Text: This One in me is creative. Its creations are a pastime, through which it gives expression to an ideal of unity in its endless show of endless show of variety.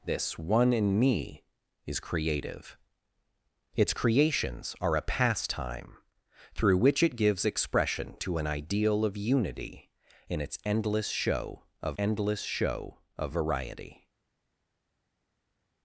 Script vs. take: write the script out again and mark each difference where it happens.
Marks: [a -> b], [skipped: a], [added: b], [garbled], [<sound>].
This One in me is creative. Its creations are a pastime, through which it gives expression to an ideal of unity in its endless show of endless show of variety.